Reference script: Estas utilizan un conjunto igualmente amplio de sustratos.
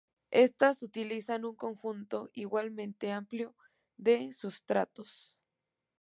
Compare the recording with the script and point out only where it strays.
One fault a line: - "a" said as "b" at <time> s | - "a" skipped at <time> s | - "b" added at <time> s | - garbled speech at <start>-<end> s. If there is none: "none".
none